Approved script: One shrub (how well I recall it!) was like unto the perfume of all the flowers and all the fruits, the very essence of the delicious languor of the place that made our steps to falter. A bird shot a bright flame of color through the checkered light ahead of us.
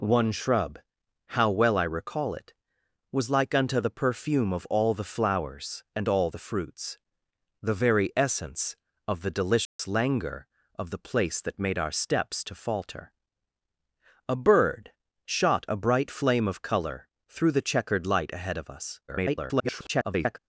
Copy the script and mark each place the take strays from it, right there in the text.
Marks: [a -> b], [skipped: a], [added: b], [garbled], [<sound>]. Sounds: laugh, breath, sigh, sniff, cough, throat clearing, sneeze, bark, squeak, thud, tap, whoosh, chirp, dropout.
One shrub (how well I recall it!) was like unto the perfume of all the flowers and all the fruits, the very essence of the delicious [dropout] languor of the place that made our steps to falter. A bird shot a bright flame of color through the checkered light ahead of us. [garbled]